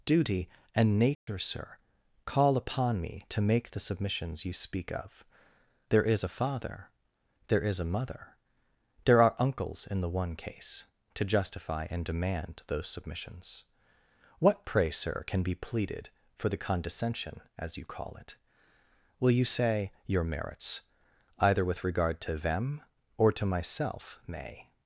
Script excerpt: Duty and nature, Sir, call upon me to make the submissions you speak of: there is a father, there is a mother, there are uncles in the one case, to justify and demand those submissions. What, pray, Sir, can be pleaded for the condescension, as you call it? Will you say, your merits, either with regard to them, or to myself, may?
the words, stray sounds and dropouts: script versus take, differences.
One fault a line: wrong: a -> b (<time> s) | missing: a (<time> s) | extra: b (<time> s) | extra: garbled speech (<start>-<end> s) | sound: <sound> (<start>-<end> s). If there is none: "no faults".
sound: dropout (1.1-1.3 s)